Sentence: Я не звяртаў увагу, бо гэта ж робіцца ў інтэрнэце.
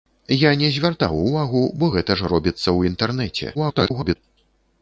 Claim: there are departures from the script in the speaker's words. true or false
true